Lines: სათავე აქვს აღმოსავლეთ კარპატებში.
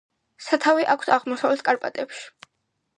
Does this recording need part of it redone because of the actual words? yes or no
no